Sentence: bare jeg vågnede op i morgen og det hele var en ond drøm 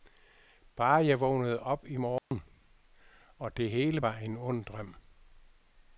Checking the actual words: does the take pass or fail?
pass